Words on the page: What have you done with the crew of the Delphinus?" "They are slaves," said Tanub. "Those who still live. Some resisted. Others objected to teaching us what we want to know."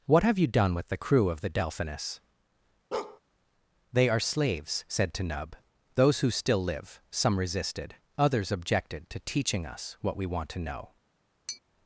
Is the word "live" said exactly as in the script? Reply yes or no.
yes